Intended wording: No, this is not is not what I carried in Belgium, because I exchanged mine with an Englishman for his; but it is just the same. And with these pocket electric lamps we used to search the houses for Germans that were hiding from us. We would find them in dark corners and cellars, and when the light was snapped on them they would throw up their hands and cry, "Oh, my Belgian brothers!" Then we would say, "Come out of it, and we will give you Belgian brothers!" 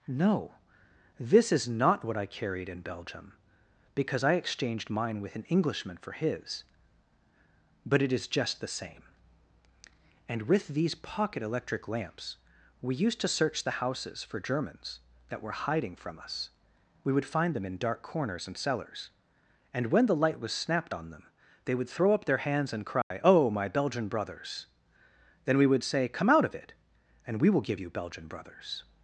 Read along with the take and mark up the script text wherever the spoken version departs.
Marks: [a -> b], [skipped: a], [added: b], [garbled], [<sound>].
No, this is not [skipped: is not] what I carried in Belgium, because I exchanged mine with an Englishman for his; but it is just the same. And with these pocket electric lamps we used to search the houses for Germans that were hiding from us. We would find them in dark corners and cellars, and when the light was snapped on them they would throw up their hands and cry, [dropout] "Oh, my Belgian brothers!" Then we would say, "Come out of it, and we will give you Belgian brothers!"